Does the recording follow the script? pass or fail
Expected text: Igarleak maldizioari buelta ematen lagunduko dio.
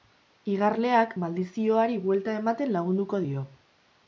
pass